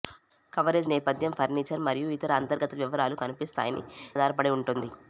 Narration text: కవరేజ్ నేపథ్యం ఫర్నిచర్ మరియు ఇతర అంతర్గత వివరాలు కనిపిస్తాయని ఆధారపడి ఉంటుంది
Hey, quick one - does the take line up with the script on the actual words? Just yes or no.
yes